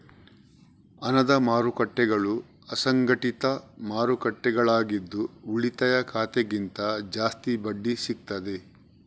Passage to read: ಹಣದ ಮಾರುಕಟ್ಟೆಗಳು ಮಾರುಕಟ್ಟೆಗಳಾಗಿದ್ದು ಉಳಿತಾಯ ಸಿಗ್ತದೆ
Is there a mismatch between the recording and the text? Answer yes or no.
yes